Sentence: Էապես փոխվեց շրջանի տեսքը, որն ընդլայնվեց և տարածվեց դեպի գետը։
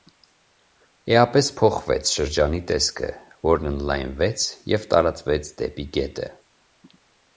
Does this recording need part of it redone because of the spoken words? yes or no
no